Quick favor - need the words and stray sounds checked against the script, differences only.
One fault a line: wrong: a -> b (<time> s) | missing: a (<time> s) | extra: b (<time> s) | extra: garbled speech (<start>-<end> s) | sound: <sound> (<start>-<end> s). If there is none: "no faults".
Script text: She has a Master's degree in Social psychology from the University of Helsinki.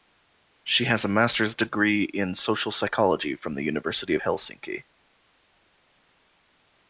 no faults